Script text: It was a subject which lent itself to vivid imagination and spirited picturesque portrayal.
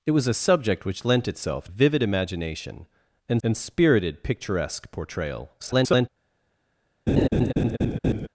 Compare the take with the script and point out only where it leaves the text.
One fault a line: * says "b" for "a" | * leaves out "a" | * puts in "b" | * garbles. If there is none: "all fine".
* leaves out "to"
* puts in "and"
* garbles